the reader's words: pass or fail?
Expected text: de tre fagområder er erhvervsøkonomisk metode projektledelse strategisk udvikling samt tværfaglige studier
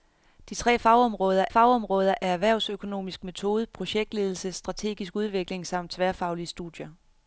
fail